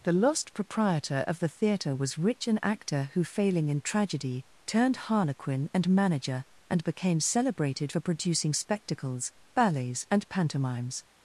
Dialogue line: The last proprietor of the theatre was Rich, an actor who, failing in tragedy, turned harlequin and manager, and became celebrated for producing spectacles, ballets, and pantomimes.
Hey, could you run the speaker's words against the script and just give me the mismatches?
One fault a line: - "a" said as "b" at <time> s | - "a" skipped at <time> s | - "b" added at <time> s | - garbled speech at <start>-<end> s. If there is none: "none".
- "last" said as "lost" at 0.1 s